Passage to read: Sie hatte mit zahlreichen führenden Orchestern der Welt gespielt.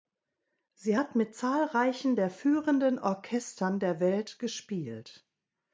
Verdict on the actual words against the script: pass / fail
fail